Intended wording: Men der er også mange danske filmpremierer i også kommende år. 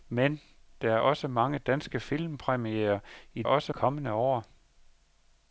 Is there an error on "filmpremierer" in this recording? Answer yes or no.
no